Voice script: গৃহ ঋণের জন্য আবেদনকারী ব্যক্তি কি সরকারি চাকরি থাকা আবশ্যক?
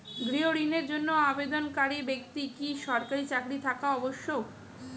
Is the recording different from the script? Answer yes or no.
no